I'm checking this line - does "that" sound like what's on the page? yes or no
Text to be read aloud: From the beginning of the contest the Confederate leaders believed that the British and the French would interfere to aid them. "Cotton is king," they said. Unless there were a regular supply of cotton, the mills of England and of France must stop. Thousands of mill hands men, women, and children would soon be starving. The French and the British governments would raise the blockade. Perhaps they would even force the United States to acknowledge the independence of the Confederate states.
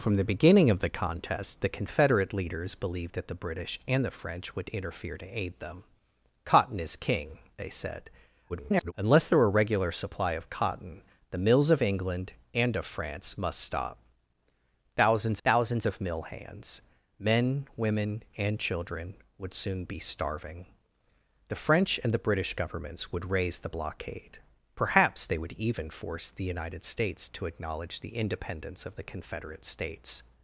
yes